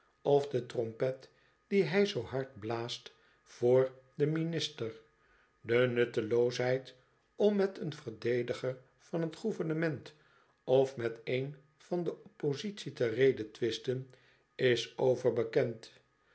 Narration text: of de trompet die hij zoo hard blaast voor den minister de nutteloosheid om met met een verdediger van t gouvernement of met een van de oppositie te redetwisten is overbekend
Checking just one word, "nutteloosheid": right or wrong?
right